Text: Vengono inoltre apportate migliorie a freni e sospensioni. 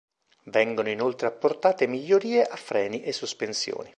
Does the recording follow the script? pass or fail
pass